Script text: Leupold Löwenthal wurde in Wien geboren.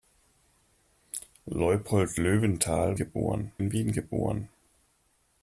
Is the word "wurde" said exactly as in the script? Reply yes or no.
no